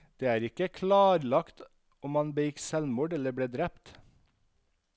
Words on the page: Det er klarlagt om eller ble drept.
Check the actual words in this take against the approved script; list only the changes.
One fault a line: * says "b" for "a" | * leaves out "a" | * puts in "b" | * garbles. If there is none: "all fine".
* puts in "ikke"
* puts in "han begikk selvmord"